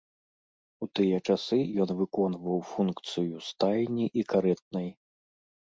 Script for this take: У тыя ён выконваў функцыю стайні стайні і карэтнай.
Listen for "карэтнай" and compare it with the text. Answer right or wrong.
right